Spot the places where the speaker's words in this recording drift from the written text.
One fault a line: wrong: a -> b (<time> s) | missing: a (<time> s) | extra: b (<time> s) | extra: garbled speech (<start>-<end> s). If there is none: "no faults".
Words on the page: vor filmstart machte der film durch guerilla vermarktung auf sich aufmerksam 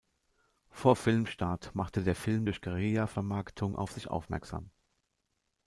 no faults